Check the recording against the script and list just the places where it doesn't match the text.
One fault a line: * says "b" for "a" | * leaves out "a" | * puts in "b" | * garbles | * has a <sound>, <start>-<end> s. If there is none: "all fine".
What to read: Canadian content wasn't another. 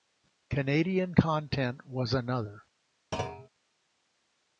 * says "was" for "wasn't"
* has a thud, 3.1-3.5 s